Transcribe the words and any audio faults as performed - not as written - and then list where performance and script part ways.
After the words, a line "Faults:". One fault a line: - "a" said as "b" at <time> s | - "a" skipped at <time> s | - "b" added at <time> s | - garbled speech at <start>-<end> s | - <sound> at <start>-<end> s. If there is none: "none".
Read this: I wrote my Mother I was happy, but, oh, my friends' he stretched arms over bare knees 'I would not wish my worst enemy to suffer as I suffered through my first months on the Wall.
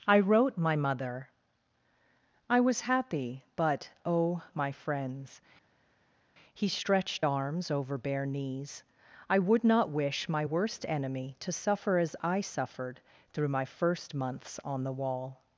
I wrote my Mother I was happy, but, oh, my friends' he stretched arms over bare knees 'I would not wish my worst enemy to suffer as I suffered through my first months on the Wall.
Faults:
none